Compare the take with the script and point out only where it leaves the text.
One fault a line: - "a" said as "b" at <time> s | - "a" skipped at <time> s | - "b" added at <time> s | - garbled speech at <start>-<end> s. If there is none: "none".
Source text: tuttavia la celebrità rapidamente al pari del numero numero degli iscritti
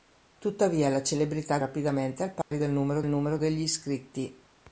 none